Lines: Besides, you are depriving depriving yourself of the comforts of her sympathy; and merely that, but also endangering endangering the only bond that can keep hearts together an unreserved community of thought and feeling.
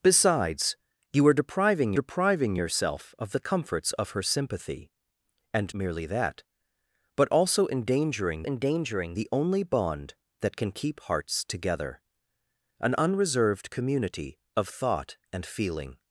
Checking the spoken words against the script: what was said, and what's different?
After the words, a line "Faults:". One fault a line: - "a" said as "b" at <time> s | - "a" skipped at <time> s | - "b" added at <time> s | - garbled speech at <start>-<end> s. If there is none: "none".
Besides, you are depriving depriving yourself of the comforts of her sympathy; and merely that, but also endangering endangering the only bond that can keep hearts together an unreserved community of thought and feeling.
Faults:
none